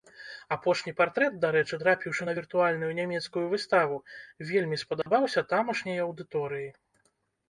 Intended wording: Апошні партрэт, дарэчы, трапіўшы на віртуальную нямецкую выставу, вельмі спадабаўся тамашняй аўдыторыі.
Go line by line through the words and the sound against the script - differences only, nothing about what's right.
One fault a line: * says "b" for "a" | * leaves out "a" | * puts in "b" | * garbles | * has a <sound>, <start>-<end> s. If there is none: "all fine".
* has a dropout, 5.0-5.1 s